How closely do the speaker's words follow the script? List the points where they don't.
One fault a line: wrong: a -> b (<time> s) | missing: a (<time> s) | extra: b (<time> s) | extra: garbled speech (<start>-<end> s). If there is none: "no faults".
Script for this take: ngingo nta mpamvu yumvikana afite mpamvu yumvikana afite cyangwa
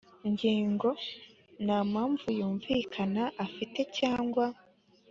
missing: mpamvu yumvikana afite (3.8 s)